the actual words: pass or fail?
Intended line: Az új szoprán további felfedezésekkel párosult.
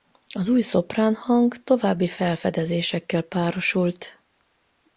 fail